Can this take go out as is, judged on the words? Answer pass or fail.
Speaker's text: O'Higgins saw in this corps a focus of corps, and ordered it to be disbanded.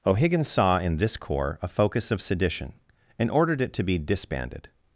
fail